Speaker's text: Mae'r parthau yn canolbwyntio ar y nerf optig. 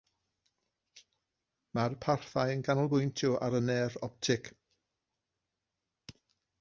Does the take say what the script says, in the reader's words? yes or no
yes